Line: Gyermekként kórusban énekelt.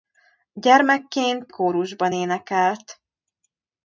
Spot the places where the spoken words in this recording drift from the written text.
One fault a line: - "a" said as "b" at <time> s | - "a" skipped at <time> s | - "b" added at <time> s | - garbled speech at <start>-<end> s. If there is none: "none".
none